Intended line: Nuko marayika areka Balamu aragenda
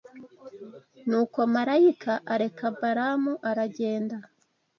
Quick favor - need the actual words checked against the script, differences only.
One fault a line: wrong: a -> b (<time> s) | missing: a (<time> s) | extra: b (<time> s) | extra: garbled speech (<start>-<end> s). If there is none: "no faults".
no faults